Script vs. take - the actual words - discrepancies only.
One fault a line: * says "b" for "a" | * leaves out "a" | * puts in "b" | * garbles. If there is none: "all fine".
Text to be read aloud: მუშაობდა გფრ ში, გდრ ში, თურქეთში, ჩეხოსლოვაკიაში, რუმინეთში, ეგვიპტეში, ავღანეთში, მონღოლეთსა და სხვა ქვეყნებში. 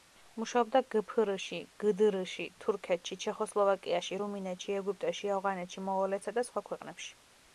all fine